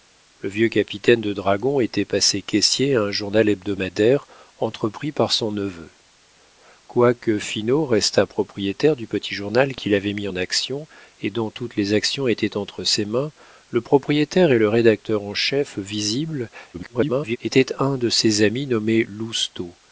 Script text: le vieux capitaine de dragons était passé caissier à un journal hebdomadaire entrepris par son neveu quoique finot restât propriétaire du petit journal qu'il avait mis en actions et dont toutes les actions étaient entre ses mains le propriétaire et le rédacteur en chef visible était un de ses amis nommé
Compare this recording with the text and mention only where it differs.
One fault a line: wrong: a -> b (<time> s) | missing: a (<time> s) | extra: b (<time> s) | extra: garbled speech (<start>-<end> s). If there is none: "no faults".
extra: garbled speech (16.7-17.4 s)